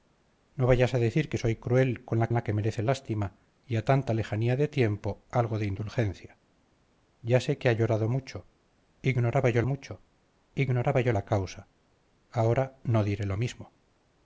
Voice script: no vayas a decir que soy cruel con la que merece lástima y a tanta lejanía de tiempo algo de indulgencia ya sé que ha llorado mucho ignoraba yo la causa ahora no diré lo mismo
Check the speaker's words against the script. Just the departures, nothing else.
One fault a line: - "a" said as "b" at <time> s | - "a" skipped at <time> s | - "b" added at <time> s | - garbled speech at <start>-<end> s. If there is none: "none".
- "la" added at 2.3 s
- "mucho ignoraba yo" added at 9.6 s